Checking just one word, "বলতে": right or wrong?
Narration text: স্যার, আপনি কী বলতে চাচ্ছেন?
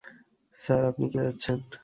wrong